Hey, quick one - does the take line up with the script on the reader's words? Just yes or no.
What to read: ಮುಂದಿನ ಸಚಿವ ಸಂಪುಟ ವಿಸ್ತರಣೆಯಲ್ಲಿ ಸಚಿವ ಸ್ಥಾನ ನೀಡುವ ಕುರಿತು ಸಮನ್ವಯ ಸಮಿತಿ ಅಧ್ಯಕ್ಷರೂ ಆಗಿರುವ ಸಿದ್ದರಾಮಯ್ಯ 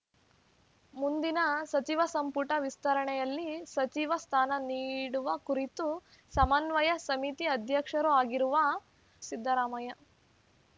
yes